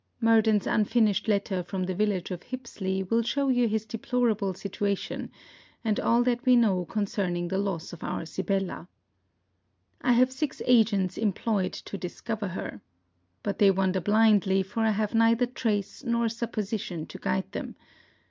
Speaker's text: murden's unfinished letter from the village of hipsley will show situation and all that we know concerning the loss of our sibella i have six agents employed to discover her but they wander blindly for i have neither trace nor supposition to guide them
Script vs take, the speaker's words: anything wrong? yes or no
yes